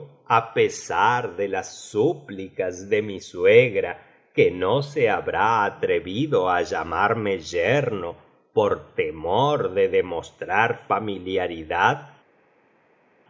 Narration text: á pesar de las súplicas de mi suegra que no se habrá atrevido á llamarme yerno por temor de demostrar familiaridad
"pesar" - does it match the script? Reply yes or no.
yes